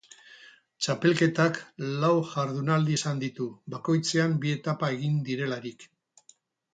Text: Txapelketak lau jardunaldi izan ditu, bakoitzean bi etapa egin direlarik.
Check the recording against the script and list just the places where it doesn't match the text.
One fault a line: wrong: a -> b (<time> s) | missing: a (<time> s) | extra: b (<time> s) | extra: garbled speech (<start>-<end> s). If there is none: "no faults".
no faults